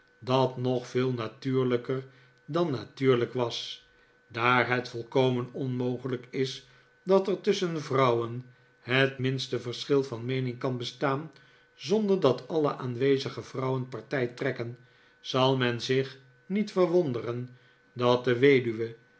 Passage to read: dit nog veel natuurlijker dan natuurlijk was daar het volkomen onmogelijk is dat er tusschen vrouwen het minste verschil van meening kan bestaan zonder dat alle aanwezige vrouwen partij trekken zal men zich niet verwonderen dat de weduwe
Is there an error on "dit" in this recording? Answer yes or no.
yes